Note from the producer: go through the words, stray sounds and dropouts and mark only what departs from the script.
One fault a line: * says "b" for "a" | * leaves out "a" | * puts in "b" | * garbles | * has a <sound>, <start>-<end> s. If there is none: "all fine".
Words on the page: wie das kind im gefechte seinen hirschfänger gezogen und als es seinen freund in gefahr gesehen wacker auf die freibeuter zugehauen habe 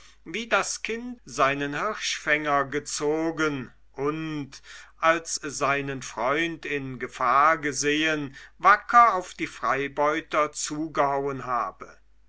* leaves out "im gefechte"
* leaves out "es"